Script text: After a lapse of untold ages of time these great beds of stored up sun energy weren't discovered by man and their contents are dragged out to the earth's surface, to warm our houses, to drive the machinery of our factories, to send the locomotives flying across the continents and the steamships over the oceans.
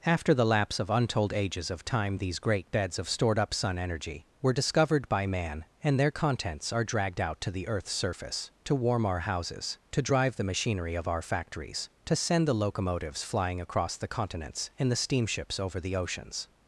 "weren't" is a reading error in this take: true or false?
true